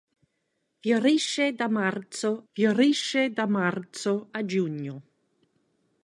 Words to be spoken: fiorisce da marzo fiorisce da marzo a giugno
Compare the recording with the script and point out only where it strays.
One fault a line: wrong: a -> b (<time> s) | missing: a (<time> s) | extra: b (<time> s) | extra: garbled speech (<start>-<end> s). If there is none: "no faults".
no faults